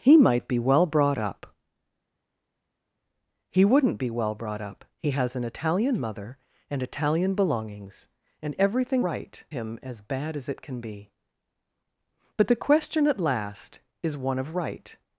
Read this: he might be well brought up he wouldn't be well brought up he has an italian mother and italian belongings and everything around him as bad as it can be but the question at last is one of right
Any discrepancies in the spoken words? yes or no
yes